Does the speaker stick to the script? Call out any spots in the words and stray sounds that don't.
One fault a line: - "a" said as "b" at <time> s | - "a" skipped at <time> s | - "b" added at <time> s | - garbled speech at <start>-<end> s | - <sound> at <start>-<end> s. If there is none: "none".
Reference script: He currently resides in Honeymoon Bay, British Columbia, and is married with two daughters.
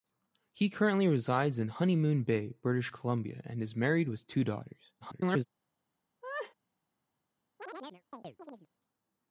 - garbled speech at 5.0-5.5 s
- laugh at 6.2-6.5 s
- chirp at 7.6-8.7 s